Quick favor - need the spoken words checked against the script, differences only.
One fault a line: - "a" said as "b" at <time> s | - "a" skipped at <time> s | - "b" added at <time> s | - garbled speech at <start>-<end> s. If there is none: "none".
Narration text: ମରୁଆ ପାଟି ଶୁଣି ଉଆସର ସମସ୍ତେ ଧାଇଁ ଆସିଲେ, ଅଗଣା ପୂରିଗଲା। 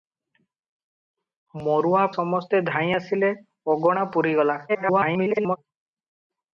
- "ପାଟି ଶୁଣି ଉଆସର" skipped at 2.0 s
- garbled speech at 4.7-5.6 s